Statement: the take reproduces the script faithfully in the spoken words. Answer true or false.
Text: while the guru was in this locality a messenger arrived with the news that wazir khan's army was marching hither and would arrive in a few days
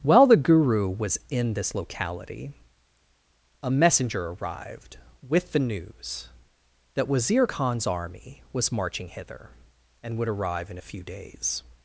true